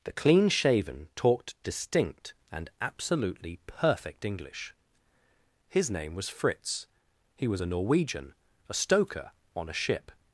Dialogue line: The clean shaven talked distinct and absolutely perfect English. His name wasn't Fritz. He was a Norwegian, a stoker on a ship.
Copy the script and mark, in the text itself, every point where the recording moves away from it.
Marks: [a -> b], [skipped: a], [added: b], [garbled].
The clean shaven talked distinct and absolutely perfect English. His name [wasn't -> was] Fritz. He was a Norwegian, a stoker on a ship.